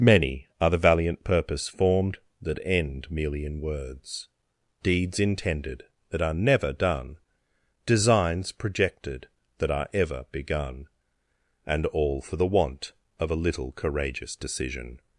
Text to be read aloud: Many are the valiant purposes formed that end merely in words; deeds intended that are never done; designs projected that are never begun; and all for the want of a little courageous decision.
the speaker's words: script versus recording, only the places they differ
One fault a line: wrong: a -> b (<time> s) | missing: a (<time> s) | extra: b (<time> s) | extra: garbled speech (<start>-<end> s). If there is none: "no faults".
wrong: purposes -> purpose (1.2 s)
wrong: never -> ever (9.9 s)